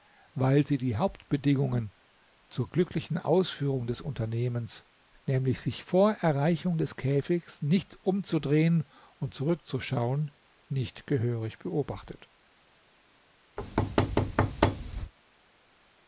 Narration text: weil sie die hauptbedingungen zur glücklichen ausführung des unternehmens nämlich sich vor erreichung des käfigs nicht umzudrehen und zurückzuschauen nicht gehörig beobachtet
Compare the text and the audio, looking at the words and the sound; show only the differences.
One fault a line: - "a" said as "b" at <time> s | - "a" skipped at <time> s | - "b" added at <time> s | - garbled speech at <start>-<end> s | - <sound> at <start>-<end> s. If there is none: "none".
- thud at 13.6-15.1 s